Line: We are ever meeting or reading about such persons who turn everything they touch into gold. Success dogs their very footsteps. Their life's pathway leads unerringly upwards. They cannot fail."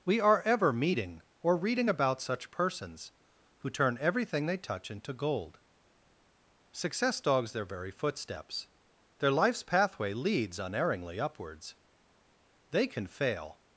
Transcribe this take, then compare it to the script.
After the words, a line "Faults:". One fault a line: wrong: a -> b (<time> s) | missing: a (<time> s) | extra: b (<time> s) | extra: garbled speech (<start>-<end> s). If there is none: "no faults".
We are ever meeting or reading about such persons who turn everything they touch into gold. Success dogs their very footsteps. Their life's pathway leads unerringly upwards. They can fail."
Faults:
wrong: cannot -> can (12.9 s)